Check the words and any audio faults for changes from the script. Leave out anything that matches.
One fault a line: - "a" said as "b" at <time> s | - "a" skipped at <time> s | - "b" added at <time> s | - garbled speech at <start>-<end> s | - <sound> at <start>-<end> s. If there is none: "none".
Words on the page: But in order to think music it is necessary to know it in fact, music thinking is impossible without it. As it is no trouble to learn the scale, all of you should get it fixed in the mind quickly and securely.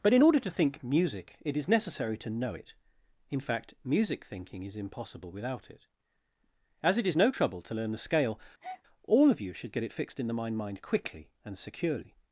- breath at 8.6-8.8 s
- "mind" added at 10.6 s